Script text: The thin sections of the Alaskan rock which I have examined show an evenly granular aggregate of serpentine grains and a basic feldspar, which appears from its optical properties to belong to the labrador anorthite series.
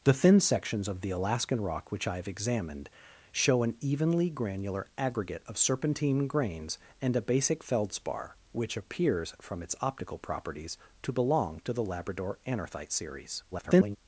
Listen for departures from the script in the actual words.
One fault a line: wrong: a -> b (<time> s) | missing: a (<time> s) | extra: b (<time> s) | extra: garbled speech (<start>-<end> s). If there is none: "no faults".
extra: garbled speech (13.5-14.0 s)